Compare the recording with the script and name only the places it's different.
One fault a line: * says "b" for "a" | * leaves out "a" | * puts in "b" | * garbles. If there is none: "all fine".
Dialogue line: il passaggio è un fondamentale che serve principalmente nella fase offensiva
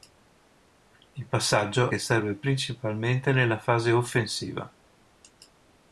* leaves out "è un fondamentale"